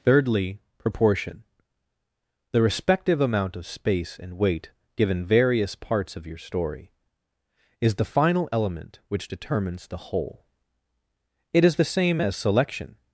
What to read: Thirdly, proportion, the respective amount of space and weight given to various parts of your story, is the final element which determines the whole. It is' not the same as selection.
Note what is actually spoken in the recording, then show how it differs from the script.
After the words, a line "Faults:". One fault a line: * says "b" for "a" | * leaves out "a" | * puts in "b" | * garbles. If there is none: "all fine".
Thirdly, proportion, the respective amount of space and weight given various parts of your story, is the final element which determines the whole. It is' the same as selection.
Faults:
* leaves out "to"
* leaves out "not"